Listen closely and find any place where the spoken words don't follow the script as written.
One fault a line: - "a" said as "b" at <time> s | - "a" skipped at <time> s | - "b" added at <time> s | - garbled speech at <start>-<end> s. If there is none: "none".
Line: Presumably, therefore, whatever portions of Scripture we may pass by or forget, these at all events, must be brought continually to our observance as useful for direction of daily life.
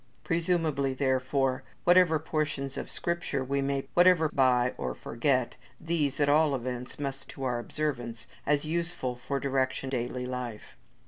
- "pass" said as "whatever" at 3.9 s
- "be brought continually" skipped at 7.3 s
- "of" skipped at 9.9 s